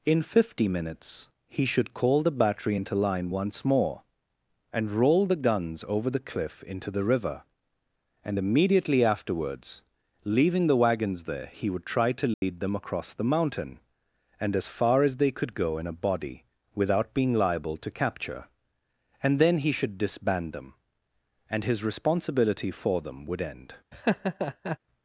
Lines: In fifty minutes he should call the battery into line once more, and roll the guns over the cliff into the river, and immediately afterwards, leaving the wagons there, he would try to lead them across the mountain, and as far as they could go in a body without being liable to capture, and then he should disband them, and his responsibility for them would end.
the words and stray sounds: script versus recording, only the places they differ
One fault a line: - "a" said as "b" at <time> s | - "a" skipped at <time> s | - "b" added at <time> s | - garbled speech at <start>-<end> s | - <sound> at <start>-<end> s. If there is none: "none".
- dropout at 12.3-12.4 s
- laugh at 23.9-24.8 s